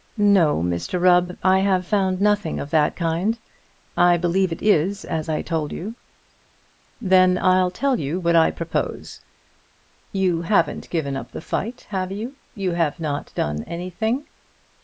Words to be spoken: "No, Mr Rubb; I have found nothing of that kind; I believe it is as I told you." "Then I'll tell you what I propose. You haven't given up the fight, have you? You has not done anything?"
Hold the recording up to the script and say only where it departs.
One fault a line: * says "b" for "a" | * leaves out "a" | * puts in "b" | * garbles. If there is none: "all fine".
* says "have" for "has"